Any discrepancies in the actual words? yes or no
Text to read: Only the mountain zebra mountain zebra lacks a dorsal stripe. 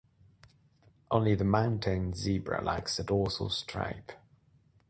yes